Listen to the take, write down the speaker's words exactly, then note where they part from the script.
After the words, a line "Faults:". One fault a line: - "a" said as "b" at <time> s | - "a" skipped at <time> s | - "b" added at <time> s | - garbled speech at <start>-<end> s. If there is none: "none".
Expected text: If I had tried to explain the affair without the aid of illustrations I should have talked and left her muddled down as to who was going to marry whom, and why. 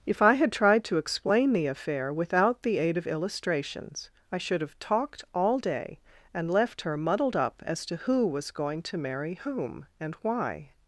If I had tried to explain the affair without the aid of illustrations I should have talked all day and left her muddled up as to who was going to marry whom, and why.
Faults:
- "all day" added at 5.3 s
- "down" said as "up" at 7.3 s